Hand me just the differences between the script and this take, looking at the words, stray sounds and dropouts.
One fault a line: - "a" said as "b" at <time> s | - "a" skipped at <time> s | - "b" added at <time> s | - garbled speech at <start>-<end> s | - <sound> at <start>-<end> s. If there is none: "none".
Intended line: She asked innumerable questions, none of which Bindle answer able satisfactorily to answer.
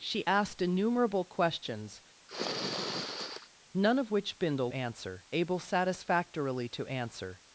- sniff at 2.3-3.5 s